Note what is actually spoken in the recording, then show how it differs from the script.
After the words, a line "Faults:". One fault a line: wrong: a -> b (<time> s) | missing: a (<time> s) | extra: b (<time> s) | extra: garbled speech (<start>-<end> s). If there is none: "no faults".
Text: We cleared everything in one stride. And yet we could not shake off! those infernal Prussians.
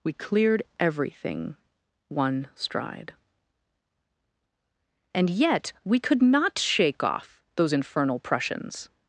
We cleared everything one stride. And yet we could not shake off! those infernal Prussians.
Faults:
missing: in (1.6 s)